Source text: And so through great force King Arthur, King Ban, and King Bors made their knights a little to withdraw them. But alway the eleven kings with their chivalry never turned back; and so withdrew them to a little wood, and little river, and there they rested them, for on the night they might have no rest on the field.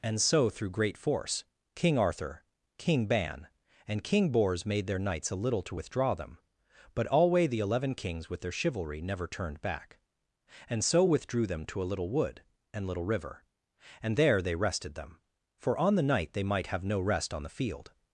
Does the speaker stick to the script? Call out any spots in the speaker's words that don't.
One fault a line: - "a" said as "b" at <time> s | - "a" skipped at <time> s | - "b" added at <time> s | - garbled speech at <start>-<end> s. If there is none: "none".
none